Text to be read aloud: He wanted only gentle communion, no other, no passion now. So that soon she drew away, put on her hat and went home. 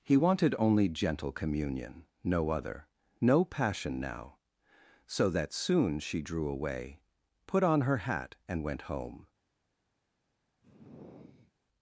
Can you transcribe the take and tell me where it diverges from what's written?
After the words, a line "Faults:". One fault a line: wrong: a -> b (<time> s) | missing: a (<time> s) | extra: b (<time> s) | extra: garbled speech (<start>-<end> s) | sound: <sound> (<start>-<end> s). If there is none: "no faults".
He wanted only gentle communion, no other, no passion now. So that soon she drew away, put on her hat and went home.
Faults:
sound: sigh (10.6-11.5 s)